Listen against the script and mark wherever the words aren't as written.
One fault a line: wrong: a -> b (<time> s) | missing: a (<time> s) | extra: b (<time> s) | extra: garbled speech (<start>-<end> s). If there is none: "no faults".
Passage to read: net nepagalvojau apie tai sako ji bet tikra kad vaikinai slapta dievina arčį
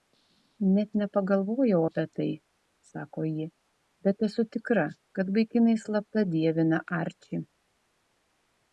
extra: esu (4.3 s)